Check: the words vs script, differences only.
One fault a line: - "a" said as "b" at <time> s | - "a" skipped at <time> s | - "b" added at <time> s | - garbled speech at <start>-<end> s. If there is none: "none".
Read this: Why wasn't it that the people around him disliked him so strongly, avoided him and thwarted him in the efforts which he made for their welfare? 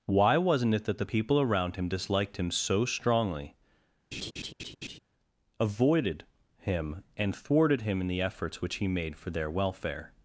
none